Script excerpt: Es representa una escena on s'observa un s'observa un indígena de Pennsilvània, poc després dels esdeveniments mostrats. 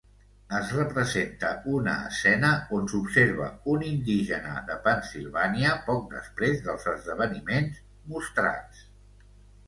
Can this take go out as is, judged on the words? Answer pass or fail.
fail